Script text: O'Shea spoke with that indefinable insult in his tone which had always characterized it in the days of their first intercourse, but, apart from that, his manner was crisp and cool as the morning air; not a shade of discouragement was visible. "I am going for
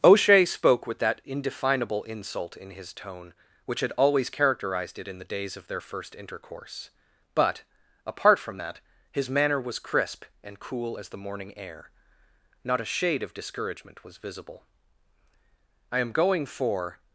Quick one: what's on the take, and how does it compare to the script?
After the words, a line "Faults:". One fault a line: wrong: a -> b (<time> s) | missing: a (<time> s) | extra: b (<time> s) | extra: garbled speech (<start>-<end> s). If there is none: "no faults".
O'Shea spoke with that indefinable insult in his tone which had always characterized it in the days of their first intercourse, but, apart from that, his manner was crisp and cool as the morning air; not a shade of discouragement was visible. "I am going for
Faults:
no faults